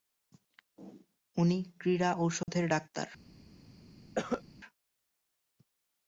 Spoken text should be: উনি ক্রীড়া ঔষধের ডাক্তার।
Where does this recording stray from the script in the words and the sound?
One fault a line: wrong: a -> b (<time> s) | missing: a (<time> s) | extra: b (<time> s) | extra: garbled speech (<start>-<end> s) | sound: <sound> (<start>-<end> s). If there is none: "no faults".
sound: dropout (2.4-2.5 s)
sound: cough (4.2-4.4 s)